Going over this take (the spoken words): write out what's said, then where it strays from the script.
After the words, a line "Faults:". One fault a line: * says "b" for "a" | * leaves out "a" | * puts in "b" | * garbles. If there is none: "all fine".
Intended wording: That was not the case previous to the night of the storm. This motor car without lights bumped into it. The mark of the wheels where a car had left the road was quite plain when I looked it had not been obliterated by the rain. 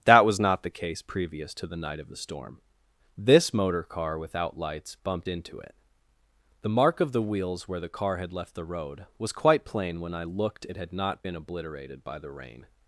That was not the case previous to the night of the storm. This motor car without lights bumped into it. The mark of the wheels where the car had left the road was quite plain when I looked it had not been obliterated by the rain.
Faults:
* says "the" for "a"